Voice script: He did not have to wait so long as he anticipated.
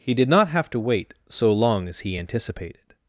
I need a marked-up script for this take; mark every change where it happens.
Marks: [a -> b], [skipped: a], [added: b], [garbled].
He did not have to wait so long as he anticipated.